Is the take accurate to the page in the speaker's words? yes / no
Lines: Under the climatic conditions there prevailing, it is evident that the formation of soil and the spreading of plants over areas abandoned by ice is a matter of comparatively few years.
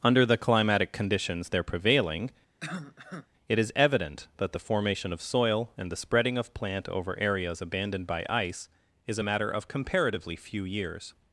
no